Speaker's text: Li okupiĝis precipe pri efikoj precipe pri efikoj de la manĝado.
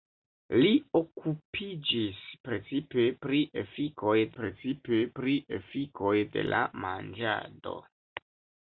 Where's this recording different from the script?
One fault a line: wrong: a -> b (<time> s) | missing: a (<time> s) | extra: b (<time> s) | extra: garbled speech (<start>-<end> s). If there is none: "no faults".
no faults